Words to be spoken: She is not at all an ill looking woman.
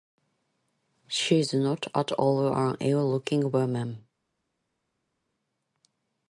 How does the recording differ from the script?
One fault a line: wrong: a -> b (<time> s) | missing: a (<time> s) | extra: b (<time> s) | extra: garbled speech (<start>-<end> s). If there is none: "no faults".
no faults